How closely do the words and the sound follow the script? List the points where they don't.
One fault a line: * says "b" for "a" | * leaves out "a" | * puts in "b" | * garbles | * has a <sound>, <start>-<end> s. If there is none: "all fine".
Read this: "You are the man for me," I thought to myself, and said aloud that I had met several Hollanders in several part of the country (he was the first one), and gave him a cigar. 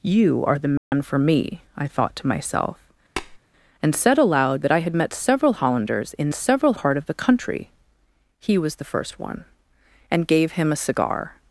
* has a dropout, 0.8-0.9 s
* has a tap, 3.2-3.4 s